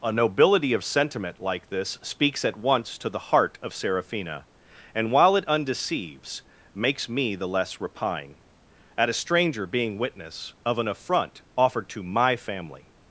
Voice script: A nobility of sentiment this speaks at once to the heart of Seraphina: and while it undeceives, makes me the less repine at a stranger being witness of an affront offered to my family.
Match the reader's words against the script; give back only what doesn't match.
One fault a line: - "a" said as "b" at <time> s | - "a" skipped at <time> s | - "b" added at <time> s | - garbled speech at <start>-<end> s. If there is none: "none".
- "like" added at 1.4 s